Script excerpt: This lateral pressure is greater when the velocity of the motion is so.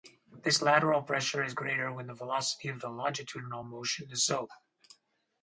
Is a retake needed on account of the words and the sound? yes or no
yes